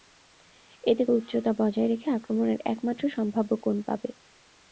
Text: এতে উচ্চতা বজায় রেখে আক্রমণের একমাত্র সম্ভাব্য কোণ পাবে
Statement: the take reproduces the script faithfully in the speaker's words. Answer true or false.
true